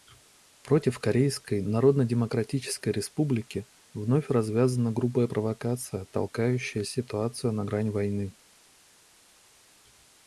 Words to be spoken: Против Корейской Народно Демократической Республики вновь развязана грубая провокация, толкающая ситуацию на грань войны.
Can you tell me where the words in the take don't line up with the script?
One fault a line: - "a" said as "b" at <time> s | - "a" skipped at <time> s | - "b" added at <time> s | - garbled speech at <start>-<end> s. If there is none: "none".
none